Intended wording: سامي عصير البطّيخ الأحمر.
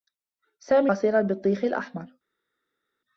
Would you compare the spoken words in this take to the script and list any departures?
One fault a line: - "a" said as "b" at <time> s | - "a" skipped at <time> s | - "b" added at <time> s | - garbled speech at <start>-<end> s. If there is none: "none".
none